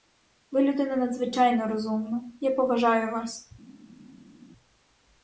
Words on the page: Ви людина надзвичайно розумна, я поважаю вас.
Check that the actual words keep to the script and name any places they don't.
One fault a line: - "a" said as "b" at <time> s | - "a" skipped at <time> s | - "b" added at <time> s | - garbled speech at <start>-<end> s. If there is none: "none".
none